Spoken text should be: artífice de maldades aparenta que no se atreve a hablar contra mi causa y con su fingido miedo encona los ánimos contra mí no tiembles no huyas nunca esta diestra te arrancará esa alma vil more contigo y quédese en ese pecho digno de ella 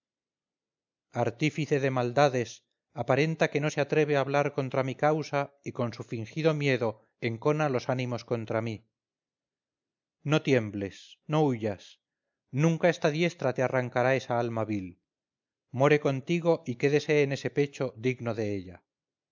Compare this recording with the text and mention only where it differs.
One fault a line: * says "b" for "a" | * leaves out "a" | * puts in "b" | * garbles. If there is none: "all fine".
all fine